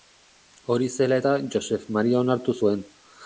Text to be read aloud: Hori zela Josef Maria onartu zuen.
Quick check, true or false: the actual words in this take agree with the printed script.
false